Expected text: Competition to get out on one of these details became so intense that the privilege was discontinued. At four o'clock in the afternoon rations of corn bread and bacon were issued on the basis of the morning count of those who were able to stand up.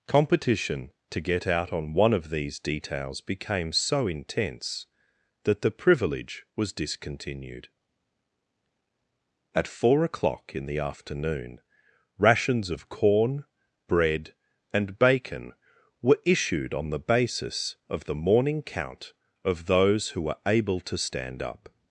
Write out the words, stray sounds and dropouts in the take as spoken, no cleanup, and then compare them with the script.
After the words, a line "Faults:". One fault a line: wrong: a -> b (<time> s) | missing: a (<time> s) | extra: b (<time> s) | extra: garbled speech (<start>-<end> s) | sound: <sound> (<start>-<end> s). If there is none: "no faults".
Competition to get out on one of these details became so intense that the privilege was discontinued. At four o'clock in the afternoon rations of corn bread and bacon were issued on the basis of the morning count of those who were able to stand up.
Faults:
no faults